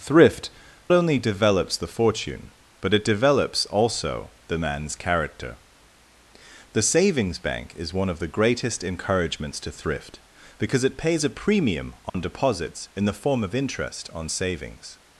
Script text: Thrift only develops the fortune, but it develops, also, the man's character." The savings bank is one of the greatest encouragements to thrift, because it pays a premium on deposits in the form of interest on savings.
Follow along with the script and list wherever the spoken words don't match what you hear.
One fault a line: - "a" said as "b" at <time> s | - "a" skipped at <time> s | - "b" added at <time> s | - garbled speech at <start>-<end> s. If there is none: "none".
none